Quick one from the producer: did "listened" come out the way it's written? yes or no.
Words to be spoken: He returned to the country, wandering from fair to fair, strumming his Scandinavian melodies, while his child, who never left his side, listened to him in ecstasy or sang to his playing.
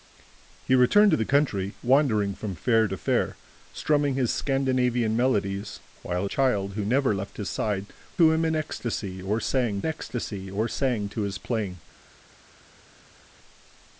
no